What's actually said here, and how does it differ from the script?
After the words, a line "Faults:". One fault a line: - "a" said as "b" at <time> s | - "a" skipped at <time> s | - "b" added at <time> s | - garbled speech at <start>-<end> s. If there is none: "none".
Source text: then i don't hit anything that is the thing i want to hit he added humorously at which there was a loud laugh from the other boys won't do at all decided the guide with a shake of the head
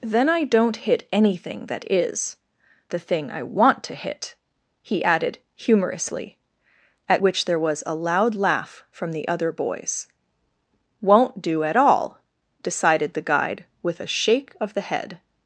then i don't hit anything that is the thing i want to hit he added humorously at which there was a loud laugh from the other boys won't do at all decided the guide with a shake of the head
Faults:
none